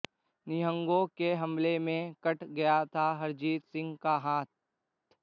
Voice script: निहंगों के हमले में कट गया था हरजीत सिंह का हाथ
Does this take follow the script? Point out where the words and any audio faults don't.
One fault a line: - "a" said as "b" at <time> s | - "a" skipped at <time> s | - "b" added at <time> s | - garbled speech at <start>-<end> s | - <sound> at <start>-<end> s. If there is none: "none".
none